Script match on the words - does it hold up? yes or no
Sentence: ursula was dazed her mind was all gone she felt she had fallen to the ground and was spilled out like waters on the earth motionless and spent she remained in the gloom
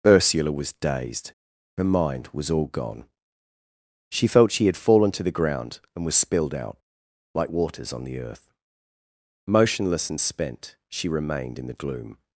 yes